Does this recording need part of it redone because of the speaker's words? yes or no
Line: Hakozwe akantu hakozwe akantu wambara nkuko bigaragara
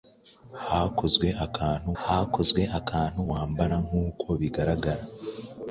no